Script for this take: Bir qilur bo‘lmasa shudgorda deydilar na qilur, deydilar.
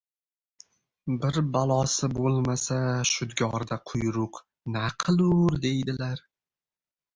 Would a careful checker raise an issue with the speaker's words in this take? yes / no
yes